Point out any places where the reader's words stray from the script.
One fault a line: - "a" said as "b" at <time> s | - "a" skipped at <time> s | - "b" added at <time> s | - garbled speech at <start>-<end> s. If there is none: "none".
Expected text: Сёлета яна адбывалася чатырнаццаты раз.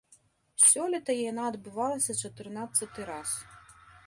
none